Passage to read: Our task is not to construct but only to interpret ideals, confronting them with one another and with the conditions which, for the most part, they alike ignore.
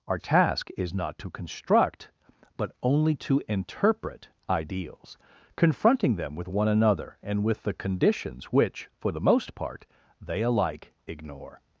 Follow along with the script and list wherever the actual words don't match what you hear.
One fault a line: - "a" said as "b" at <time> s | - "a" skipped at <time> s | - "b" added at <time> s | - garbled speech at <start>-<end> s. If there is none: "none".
none